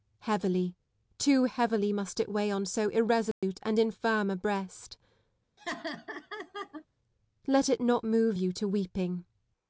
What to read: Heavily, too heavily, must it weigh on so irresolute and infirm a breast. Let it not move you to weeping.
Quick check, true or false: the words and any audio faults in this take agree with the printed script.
false